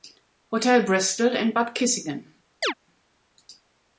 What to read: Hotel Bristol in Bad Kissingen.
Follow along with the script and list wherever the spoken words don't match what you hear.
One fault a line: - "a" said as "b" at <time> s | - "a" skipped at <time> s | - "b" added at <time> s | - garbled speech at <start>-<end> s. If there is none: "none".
none